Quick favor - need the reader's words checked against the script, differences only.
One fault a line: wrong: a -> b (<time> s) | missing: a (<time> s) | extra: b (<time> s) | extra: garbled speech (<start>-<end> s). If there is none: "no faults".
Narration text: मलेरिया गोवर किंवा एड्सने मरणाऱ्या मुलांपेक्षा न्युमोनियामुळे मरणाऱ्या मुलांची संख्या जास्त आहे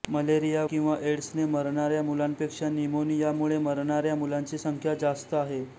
missing: गोवर (0.6 s)